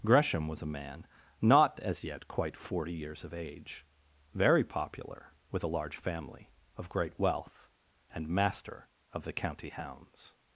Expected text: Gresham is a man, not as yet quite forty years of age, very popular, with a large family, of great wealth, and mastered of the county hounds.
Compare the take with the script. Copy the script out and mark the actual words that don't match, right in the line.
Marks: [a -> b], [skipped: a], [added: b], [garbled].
Gresham [is -> was] a man, not as yet quite forty years of age, very popular, with a large family, of great wealth, and [mastered -> master] of the county hounds.